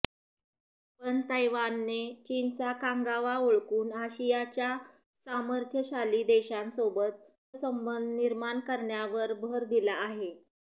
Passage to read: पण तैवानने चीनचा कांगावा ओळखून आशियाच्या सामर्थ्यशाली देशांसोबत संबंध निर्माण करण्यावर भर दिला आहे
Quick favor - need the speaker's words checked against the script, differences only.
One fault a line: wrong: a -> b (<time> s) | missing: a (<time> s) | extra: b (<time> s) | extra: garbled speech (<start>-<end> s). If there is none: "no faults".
no faults